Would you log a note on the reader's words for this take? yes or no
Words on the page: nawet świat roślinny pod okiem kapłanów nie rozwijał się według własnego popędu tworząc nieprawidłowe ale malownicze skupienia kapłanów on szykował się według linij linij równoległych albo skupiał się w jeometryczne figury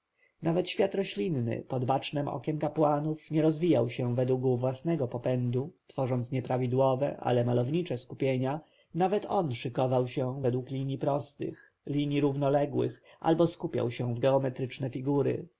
yes